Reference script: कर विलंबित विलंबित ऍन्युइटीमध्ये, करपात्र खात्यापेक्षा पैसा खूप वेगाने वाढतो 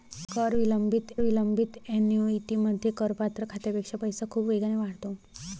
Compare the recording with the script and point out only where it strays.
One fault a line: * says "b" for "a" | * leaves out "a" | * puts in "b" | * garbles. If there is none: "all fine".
all fine